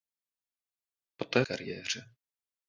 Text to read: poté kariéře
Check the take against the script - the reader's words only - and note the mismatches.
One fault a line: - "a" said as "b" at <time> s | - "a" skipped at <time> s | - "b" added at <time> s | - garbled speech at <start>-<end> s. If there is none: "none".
none